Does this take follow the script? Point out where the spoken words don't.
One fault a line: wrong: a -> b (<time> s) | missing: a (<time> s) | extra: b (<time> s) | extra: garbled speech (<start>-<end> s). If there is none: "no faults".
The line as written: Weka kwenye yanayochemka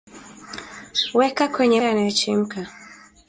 no faults